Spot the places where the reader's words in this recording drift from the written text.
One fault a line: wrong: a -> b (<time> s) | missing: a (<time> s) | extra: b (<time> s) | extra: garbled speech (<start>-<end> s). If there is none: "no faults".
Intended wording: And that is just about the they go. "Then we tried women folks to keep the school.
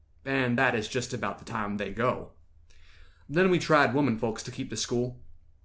extra: time (1.4 s)